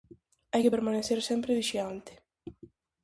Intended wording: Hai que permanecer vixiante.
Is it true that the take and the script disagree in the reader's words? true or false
true